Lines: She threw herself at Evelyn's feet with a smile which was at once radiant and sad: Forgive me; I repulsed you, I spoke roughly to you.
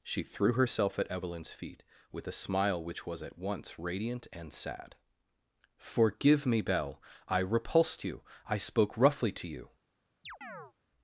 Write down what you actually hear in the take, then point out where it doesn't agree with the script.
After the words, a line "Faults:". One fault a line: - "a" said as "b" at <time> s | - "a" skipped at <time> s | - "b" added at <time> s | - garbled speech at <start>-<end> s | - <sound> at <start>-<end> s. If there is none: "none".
She threw herself at Evelyn's feet with a smile which was at once radiant and sad: Forgive me; belle I repulsed you, I spoke roughly to you.
Faults:
- "belle" added at 6.6 s
- chirp at 10.2-10.7 s